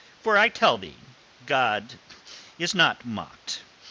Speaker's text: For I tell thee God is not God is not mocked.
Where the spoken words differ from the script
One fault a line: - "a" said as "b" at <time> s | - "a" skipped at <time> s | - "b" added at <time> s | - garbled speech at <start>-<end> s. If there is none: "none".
- "God is not" skipped at 3.0 s